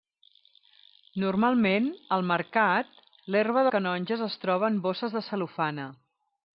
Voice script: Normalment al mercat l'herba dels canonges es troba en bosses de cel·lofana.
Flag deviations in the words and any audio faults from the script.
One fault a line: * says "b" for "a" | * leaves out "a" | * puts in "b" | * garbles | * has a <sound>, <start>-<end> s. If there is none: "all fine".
* leaves out "dels"